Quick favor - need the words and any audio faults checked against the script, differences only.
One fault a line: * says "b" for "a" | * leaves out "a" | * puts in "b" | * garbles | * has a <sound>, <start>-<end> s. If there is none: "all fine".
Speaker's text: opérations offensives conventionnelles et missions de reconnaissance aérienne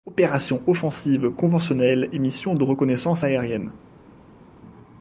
all fine